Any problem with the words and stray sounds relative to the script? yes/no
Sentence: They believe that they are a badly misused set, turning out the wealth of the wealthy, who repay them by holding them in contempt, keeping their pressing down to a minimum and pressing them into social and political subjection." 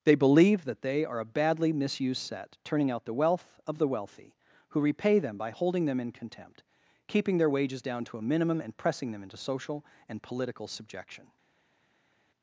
yes